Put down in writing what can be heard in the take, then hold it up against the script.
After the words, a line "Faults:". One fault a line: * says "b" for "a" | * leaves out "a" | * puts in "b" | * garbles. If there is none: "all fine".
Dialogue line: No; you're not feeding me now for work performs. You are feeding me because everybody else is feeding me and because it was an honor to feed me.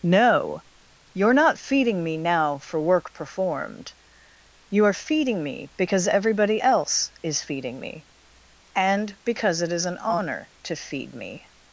No; you're not feeding me now for work performed. You are feeding me because everybody else is feeding me and because it is an honor to feed me.
Faults:
* says "performed" for "performs"
* says "is" for "was"